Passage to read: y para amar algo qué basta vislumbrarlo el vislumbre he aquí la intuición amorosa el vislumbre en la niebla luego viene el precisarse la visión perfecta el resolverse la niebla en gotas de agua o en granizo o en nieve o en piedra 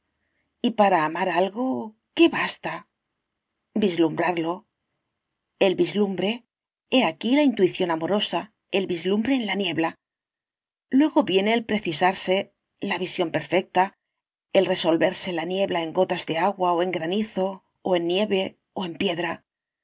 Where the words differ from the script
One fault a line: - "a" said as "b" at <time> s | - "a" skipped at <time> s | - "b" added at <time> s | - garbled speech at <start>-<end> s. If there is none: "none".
none